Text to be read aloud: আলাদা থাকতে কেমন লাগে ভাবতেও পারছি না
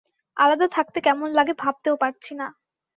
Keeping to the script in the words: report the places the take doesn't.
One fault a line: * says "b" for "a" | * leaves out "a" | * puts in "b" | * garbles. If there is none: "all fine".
all fine